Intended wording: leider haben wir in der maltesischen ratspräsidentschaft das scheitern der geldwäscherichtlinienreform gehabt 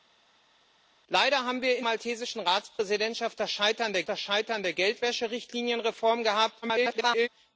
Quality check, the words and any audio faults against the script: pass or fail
fail